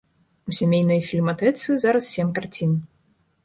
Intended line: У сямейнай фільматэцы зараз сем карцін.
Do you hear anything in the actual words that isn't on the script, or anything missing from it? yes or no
no